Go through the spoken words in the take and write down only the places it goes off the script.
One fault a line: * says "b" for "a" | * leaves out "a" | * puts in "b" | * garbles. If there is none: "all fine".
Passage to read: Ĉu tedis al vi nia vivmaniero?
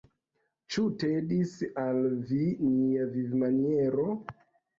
all fine